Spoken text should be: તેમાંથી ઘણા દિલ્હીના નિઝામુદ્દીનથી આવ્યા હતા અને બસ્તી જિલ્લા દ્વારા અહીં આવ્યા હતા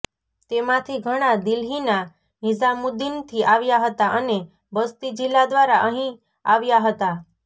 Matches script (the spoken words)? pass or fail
pass